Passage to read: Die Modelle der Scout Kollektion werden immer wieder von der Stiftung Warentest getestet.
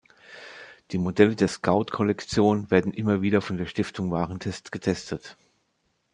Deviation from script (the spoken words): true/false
false